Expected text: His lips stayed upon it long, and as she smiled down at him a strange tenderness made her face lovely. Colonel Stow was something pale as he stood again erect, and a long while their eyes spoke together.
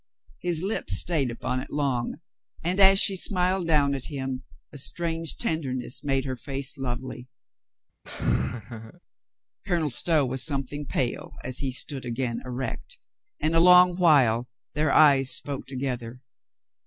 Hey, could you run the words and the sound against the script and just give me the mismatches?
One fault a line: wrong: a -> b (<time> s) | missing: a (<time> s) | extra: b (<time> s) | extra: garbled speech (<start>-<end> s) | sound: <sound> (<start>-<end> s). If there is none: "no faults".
sound: laugh (8.0-9.0 s)